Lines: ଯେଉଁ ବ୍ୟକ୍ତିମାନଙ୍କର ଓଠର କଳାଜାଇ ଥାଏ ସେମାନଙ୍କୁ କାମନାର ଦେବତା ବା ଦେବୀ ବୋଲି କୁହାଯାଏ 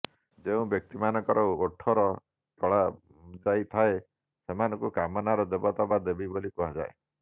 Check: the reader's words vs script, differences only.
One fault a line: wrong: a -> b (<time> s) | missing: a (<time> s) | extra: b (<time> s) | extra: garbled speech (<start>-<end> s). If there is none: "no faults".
no faults